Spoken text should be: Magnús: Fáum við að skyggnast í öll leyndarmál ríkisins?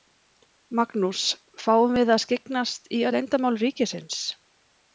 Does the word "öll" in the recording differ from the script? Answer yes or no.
yes